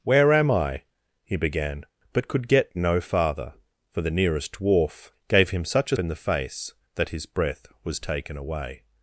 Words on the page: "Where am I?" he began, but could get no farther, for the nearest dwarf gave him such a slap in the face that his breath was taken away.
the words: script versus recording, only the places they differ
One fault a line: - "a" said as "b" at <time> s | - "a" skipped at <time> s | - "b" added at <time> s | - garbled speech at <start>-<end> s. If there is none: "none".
- "slap" skipped at 6.0 s